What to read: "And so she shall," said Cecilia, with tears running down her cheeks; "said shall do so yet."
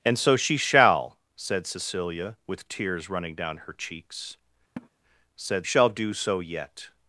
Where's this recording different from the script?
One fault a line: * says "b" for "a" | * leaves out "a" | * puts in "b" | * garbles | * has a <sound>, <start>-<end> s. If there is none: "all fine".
* has a laugh, 4.8-4.9 s